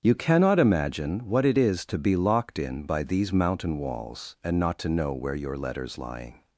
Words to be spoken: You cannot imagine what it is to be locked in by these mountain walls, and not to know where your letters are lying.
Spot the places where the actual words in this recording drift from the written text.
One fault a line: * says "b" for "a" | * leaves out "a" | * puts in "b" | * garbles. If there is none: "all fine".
* leaves out "are"